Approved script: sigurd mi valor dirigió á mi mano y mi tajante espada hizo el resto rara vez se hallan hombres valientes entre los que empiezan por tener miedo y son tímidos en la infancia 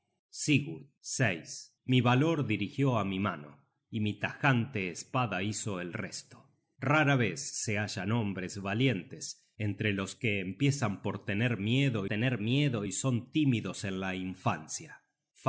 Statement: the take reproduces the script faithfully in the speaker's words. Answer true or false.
false